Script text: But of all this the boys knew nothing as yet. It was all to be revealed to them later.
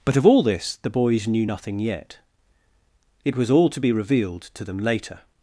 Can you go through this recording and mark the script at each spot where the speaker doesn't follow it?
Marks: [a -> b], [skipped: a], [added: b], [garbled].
But of all this the boys knew nothing [skipped: as] yet. It was all to be revealed to them later.